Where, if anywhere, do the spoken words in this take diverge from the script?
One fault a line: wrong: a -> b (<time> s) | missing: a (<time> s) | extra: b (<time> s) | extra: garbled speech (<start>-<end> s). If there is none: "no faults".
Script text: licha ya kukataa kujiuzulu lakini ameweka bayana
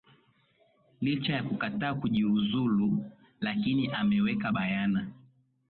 no faults